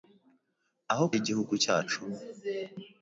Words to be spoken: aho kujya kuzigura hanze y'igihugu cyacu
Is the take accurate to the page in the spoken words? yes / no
no